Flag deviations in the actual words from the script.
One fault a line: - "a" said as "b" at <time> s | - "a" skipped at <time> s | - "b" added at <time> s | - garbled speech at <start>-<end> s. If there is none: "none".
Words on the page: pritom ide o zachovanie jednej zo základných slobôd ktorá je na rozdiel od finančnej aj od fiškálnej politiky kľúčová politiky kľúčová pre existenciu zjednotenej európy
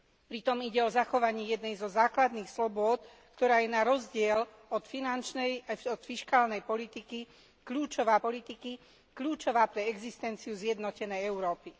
none